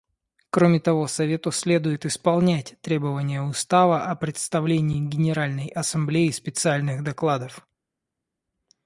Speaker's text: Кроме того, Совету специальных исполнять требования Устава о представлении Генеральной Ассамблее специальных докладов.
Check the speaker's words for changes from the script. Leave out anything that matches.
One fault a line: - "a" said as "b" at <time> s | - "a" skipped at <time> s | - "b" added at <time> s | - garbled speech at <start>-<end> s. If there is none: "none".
- "специальных" said as "следует" at 1.5 s